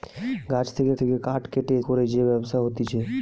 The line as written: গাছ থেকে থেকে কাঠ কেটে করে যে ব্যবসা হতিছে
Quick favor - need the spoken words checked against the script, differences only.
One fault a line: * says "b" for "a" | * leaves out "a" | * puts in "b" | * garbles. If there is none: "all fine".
all fine